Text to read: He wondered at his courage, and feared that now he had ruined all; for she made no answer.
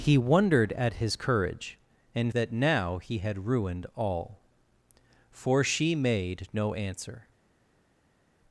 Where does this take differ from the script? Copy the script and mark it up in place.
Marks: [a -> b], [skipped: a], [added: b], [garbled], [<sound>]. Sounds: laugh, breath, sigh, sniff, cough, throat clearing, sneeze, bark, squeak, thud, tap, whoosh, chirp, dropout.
He wondered at his courage, and [skipped: feared] that now he had ruined all; for she made no answer.